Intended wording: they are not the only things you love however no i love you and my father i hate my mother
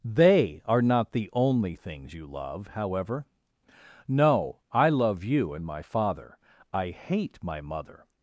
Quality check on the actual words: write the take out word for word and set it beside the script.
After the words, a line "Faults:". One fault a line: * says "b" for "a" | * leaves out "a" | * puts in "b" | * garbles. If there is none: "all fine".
they are not the only things you love however no i love you and my father i hate my mother
Faults:
all fine